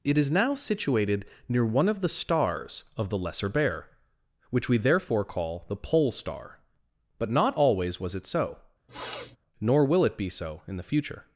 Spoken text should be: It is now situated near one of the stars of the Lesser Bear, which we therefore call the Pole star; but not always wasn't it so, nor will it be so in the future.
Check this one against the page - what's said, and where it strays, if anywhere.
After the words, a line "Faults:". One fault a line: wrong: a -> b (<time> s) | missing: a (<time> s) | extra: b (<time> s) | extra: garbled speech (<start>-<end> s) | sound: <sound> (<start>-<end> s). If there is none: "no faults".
It is now situated near one of the stars of the Lesser Bear, which we therefore call the Pole star; but not always was it so, nor will it be so in the future.
Faults:
wrong: wasn't -> was (8.0 s)
sound: sniff (8.9-9.4 s)